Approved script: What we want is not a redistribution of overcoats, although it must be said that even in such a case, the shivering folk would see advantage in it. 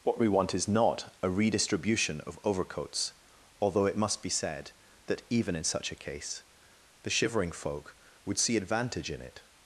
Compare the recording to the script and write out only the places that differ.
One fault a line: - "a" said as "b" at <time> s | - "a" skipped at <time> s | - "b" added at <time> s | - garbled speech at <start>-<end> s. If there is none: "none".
none